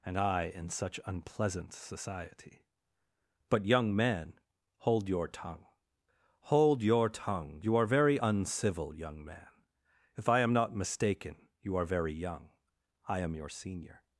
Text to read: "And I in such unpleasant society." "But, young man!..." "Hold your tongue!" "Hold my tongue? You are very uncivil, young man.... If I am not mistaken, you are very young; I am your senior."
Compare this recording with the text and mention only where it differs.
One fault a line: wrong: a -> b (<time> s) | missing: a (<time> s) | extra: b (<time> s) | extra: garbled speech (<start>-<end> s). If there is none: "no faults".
wrong: my -> your (6.8 s)